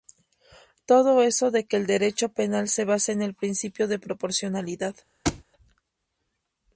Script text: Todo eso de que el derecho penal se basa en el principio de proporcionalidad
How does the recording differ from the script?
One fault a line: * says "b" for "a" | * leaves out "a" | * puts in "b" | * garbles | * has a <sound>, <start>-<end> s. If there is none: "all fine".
* has a thud, 5.2-5.4 s